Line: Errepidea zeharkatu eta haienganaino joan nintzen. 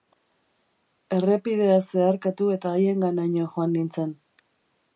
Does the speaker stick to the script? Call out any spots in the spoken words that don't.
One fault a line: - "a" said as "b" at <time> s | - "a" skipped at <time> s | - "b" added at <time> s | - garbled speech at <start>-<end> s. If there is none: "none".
none